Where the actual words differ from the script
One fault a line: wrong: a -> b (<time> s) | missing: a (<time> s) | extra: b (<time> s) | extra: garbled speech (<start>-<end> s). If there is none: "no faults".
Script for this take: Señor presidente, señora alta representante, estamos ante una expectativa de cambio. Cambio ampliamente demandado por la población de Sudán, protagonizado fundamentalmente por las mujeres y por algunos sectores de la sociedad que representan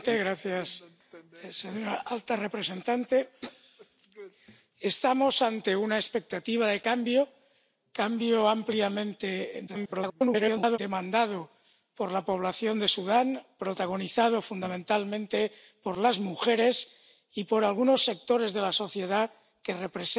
extra: garbled speech (9.7-10.8 s)